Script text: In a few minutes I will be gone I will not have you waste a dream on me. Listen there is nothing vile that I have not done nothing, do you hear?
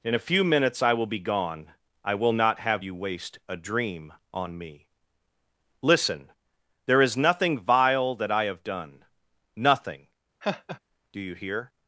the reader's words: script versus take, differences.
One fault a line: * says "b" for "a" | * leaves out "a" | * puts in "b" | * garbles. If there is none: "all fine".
* leaves out "not"